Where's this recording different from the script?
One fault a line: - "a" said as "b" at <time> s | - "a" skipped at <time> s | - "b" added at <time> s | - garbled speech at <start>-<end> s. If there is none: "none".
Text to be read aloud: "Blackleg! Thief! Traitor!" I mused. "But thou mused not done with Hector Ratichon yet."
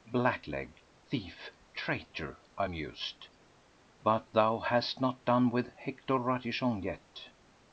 - "mused" said as "hast" at 4.6 s